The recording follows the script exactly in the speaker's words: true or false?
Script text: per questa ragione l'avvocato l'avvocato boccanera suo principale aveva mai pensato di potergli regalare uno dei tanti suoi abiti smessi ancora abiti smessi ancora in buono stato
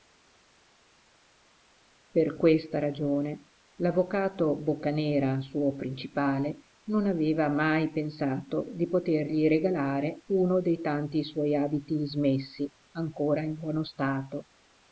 false